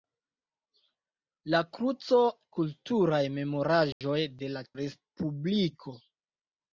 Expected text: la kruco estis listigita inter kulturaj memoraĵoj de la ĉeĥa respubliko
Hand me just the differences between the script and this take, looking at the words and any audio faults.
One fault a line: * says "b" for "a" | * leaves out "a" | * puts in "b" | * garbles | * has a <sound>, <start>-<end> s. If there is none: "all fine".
* leaves out "estis listigita inter"
* has a dropout, 3.9-4.0 s
* leaves out "ĉeĥa"